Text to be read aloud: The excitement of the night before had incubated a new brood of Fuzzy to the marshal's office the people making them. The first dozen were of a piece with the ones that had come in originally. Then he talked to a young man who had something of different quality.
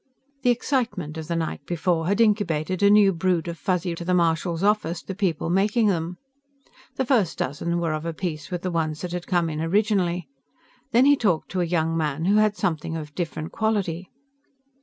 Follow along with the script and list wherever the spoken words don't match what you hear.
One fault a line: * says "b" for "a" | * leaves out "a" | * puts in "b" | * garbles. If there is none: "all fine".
all fine